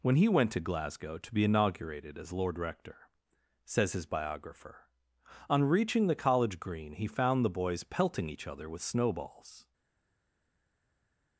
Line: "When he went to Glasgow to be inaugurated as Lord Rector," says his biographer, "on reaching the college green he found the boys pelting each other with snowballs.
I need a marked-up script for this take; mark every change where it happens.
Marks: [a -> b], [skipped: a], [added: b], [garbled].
"When he went to Glasgow to be inaugurated as Lord Rector," says his biographer, "on reaching the college green he found the boys pelting each other with snowballs.